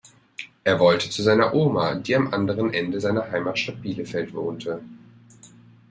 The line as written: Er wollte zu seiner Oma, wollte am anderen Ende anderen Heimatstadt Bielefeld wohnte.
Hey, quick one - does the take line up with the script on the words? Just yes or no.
no